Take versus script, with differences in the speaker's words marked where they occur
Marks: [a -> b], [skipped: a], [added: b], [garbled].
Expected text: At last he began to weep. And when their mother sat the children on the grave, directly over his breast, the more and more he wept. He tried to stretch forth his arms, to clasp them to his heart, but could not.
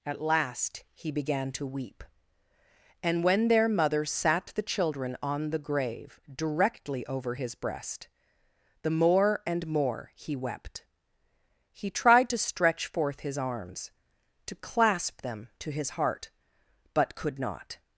At last he began to weep. And when their mother sat the children on the grave, directly over his breast, the more and more he wept. He tried to stretch forth his arms, to clasp them to his heart, but could not.